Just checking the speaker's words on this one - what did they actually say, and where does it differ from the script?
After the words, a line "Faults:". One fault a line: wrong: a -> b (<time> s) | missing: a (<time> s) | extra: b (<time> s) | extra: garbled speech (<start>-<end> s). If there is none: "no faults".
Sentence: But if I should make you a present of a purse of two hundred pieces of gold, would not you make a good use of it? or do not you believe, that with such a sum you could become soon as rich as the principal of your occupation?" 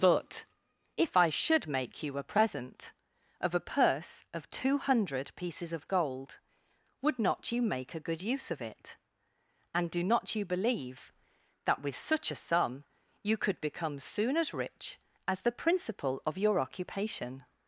But if I should make you a present of a purse of two hundred pieces of gold, would not you make a good use of it? and do not you believe, that with such a sum you could become soon as rich as the principal of your occupation?"
Faults:
wrong: or -> and (9.7 s)